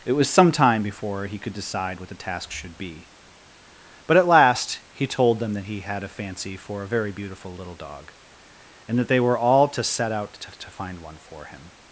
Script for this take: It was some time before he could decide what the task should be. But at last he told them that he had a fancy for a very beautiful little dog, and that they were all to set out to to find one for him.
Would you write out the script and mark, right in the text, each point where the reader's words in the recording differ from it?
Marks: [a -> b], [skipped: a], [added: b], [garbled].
It was some time before he could decide what the task should be. But at last he told them that he had a fancy for a very beautiful little dog, and that they were all to set out to to find one for him.